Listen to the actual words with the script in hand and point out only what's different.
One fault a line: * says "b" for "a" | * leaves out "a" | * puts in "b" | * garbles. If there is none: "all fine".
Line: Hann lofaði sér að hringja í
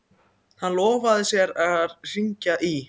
all fine